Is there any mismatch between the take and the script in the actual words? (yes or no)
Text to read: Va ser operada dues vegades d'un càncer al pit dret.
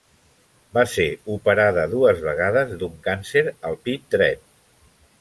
no